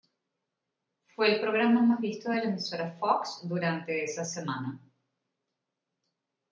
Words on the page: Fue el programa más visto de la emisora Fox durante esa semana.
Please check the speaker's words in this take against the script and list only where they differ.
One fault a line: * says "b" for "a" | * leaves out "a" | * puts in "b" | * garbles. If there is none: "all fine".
all fine